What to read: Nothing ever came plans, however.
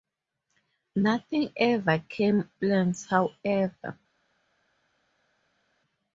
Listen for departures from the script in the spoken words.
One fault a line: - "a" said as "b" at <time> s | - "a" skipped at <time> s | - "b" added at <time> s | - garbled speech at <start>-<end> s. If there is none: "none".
none